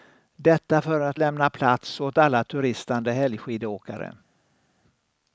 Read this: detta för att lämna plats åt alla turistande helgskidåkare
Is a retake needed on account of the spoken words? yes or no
no